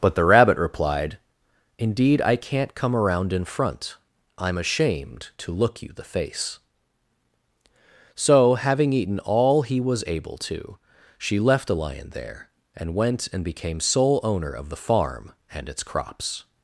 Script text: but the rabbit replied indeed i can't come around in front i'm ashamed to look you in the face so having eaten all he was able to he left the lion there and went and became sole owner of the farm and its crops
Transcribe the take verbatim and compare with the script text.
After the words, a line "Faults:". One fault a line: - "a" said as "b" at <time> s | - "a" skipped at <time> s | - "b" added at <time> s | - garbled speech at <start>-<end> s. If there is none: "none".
but the rabbit replied indeed i can't come around in front i'm ashamed to look you the face so having eaten all he was able to she left the lion there and went and became sole owner of the farm and its crops
Faults:
- "in" skipped at 5.9 s
- "he" said as "she" at 11.2 s